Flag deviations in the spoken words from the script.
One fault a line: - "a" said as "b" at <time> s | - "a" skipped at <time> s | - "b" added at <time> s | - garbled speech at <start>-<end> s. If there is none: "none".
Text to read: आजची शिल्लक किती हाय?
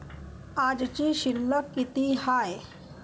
none